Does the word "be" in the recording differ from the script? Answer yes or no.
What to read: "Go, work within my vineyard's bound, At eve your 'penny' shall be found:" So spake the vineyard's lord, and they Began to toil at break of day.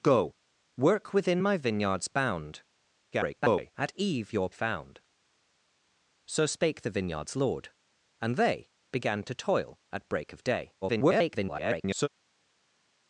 yes